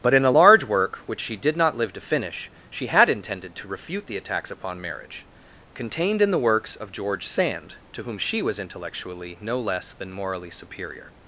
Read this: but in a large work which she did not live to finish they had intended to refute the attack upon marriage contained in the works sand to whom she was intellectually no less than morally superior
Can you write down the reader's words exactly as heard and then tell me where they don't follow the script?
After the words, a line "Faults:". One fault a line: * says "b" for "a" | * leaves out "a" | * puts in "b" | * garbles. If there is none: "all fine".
but in a large work which she did not live to finish she had intended to refute the attacks upon marriage contained in the works of george sand to whom she was intellectually no less than morally superior
Faults:
* says "she" for "they"
* says "attacks" for "attack"
* puts in "of george"